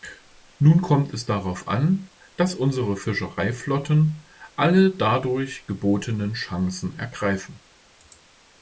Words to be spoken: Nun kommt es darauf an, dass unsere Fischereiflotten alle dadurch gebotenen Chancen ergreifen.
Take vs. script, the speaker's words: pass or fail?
pass